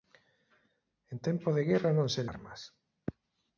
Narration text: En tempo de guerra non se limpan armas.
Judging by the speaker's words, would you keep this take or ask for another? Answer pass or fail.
fail